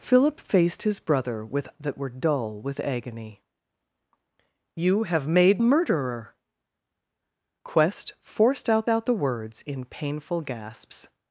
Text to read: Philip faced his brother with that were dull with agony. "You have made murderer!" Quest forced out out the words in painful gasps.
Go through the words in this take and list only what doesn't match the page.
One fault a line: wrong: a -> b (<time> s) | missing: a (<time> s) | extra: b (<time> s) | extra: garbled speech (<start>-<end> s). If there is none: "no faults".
no faults